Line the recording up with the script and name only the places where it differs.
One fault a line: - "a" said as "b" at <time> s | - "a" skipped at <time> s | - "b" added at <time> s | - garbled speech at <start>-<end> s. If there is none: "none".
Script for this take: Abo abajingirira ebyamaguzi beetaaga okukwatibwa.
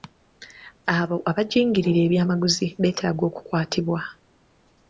none